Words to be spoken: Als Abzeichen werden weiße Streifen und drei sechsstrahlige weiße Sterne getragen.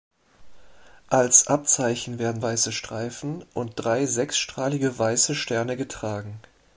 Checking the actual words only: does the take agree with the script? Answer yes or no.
yes